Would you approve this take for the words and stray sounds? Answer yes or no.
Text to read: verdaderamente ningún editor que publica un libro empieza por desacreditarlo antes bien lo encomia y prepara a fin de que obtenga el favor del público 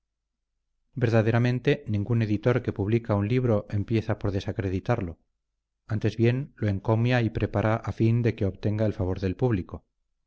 yes